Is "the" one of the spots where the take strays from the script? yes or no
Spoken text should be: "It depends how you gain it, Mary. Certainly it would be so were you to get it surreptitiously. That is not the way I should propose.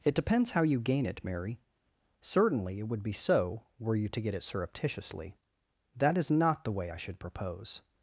no